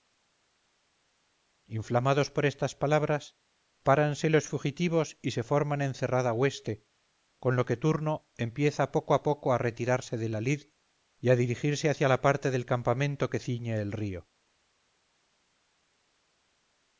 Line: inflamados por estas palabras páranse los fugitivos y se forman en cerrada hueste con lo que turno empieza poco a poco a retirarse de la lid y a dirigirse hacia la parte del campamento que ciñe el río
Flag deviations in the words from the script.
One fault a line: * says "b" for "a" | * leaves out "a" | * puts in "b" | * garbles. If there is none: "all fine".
all fine